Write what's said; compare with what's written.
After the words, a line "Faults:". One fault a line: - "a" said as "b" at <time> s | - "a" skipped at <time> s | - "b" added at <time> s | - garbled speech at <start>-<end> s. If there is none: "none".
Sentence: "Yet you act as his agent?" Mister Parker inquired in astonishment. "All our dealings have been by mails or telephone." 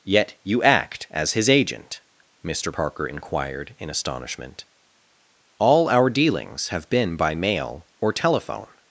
"Yet you act as his agent?" Mister Parker inquired in astonishment. "All our dealings have been by mail or telephone."
Faults:
- "mails" said as "mail" at 7.3 s